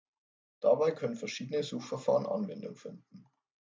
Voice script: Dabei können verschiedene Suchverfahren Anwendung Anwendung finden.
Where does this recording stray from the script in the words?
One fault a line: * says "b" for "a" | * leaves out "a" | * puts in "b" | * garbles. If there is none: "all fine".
* leaves out "Anwendung"